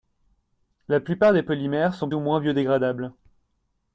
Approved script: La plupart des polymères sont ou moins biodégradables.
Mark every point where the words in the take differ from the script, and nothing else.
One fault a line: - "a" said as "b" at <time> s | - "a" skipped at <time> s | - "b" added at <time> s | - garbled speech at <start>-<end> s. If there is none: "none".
none